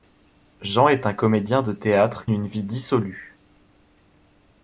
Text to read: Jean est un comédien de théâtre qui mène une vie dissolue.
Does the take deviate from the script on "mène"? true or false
true